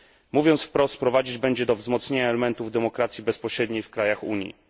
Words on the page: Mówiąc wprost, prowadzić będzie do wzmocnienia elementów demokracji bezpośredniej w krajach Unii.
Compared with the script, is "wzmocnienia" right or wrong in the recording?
right